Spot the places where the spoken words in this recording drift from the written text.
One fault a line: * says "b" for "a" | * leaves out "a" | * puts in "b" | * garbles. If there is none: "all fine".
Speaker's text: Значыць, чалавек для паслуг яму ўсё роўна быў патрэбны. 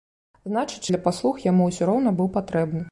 * leaves out "чалавек"